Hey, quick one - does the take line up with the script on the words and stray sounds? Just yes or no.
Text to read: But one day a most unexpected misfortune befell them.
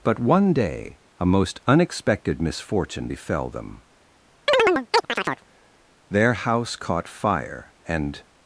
no